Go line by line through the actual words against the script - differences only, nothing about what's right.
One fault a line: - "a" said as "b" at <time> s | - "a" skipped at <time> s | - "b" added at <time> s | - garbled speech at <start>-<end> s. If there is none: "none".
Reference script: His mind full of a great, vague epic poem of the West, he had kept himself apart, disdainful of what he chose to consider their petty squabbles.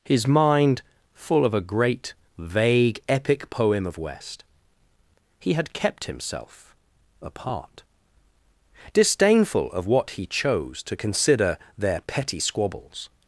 - "the" skipped at 4.0 s